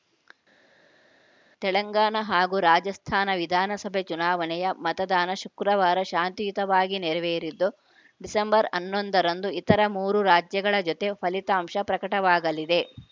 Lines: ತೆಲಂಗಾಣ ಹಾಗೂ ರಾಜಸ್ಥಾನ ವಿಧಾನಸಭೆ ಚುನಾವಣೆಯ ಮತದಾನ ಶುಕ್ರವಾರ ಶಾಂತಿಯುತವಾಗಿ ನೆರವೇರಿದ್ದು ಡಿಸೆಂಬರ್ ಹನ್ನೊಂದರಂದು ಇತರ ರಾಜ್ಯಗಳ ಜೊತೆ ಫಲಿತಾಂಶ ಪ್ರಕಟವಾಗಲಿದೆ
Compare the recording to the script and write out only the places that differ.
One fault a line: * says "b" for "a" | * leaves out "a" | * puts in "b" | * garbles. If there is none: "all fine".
* puts in "ಮೂರು"